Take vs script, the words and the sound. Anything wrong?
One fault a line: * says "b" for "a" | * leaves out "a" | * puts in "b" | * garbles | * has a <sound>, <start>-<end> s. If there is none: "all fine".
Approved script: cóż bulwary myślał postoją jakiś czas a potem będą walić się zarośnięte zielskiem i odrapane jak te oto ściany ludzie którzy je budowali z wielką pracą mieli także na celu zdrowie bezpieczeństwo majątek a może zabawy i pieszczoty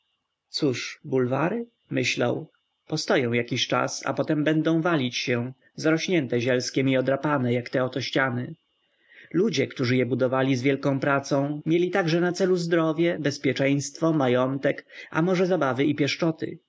all fine